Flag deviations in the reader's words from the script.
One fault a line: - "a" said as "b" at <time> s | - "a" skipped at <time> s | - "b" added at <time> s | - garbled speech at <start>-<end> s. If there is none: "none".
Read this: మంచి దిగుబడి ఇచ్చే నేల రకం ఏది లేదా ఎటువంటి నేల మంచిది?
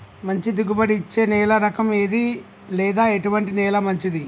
none